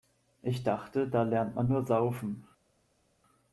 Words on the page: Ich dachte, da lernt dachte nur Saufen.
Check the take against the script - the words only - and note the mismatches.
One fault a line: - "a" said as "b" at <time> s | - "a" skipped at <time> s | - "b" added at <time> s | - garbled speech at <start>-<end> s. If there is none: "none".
- "dachte" said as "man" at 1.5 s